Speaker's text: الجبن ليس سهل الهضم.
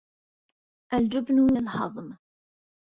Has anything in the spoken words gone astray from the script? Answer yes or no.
yes